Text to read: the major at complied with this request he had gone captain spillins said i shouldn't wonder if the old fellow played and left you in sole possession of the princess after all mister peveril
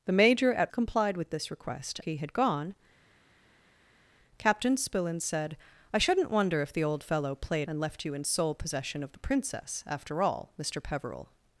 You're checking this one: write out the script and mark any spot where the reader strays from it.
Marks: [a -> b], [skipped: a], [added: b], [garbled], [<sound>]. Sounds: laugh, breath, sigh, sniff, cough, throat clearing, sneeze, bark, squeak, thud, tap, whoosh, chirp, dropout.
the major at complied with this request he had gone captain spillins said i shouldn't wonder if the old fellow played and left you in sole possession of the princess after all mister peveril